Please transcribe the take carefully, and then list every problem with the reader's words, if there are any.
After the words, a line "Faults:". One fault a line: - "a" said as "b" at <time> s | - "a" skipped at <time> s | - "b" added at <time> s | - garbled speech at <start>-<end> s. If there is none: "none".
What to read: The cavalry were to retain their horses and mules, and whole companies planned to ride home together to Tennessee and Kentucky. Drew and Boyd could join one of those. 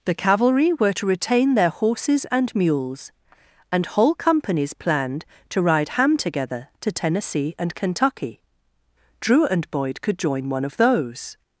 The cavalry were to retain their horses and mules, and whole companies planned to ride ham together to Tennessee and Kentucky. Drew and Boyd could join one of those.
Faults:
- "home" said as "ham" at 5.9 s